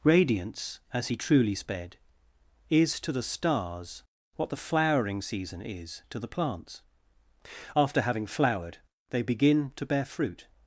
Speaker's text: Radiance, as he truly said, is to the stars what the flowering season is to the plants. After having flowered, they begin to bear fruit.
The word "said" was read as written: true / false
false